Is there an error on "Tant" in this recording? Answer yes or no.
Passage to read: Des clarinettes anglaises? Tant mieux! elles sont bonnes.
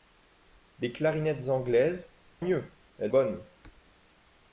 yes